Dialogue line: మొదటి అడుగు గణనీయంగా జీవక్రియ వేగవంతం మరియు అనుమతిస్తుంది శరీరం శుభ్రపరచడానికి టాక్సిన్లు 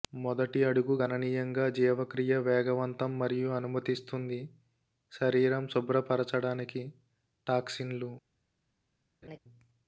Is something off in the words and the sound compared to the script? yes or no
yes